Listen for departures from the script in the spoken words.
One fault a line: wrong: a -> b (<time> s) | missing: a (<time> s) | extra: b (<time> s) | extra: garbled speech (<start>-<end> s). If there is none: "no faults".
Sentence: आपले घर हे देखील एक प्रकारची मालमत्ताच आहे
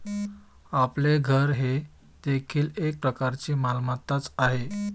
no faults